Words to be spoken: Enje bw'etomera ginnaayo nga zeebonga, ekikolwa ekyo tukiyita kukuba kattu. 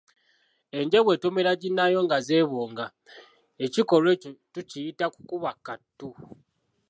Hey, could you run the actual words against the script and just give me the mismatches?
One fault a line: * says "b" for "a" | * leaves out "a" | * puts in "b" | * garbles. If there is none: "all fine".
all fine